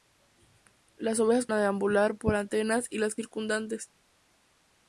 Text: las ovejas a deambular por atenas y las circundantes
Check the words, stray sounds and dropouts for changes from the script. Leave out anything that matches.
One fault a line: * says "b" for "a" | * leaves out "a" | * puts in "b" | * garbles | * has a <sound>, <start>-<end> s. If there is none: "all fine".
all fine